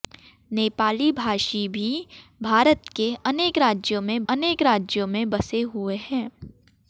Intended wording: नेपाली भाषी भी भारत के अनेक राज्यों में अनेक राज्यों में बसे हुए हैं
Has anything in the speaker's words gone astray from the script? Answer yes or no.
no